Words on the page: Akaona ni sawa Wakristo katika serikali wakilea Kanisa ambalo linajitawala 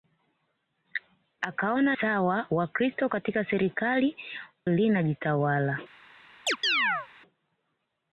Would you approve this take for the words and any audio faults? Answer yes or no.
no